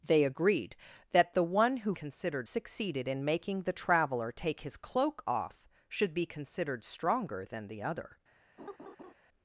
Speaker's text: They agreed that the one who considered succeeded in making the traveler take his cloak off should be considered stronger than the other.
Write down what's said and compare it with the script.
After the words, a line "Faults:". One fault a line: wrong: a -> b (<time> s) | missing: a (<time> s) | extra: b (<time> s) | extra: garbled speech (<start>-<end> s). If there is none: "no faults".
They agreed that the one who considered succeeded in making the traveler take his cloak off should be considered stronger than the other.
Faults:
no faults